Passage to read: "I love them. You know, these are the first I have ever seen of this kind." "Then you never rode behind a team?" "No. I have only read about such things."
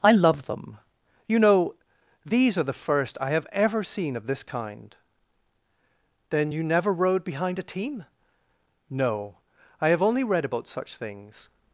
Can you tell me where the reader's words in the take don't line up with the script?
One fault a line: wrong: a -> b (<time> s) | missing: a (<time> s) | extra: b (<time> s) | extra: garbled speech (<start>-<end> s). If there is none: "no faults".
no faults